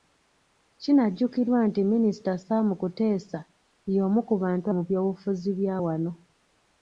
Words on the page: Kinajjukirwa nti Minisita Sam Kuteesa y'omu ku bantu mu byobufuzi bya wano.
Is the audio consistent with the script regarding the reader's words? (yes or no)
yes